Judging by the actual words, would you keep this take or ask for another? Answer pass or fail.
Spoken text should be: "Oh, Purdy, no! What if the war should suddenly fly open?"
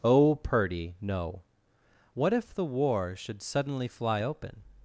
pass